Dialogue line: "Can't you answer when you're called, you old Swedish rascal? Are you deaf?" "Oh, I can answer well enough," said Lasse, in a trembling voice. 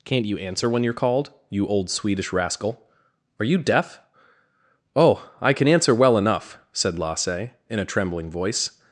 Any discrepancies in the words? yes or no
no